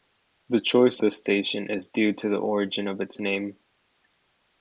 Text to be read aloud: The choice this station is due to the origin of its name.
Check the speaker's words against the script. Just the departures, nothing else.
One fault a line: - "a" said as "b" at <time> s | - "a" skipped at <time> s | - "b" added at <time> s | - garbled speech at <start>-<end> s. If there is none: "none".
none